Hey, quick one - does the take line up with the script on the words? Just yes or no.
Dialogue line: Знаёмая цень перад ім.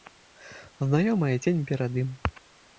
yes